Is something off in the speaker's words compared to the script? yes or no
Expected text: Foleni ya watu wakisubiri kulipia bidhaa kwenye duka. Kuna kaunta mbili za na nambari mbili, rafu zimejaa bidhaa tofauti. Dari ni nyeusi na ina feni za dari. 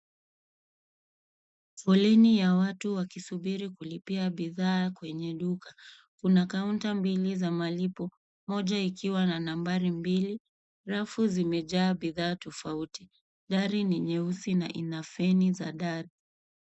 yes